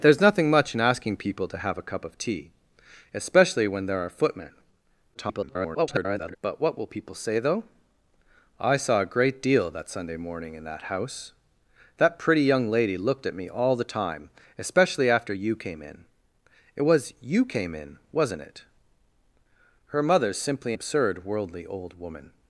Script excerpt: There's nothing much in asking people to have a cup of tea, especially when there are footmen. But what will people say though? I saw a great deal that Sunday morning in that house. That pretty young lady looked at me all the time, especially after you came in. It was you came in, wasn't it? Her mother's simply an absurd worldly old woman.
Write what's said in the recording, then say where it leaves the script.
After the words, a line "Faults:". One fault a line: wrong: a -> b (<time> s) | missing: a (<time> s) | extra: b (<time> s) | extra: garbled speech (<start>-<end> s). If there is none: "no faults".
There's nothing much in asking people to have a cup of tea, especially when there are footmen. [garbled] But what will people say though? I saw a great deal that Sunday morning in that house. That pretty young lady looked at me all the time, especially after you came in. It was you came in, wasn't it? Her mother's simply absurd worldly old woman.
Faults:
extra: garbled speech (5.1-6.4 s)
missing: an (20.7 s)